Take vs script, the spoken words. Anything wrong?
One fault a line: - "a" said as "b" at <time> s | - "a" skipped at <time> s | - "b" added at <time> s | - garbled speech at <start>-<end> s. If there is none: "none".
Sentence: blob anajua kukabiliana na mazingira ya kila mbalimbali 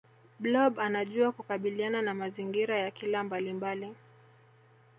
none